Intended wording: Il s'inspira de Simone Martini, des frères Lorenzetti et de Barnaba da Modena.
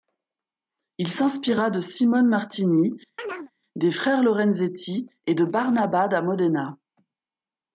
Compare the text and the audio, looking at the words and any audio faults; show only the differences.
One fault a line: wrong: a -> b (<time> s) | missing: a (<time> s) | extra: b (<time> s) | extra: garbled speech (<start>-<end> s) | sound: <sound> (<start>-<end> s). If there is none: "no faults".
sound: chirp (3.2-3.5 s)